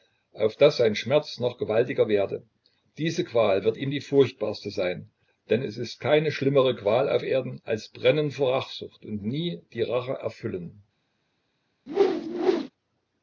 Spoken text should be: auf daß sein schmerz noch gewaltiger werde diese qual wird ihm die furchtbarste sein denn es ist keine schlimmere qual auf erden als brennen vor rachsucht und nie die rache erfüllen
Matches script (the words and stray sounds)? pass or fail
fail